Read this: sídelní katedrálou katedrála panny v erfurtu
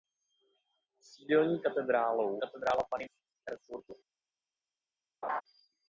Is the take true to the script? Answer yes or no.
yes